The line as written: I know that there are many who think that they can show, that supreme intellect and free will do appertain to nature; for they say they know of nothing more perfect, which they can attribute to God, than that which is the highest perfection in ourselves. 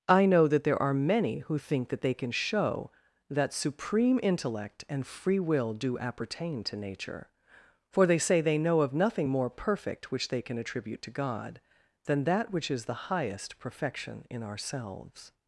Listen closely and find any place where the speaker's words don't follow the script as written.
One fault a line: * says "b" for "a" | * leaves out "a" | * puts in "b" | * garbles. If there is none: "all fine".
all fine